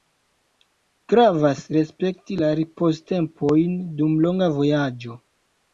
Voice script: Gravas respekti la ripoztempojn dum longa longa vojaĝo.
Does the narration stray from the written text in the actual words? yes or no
yes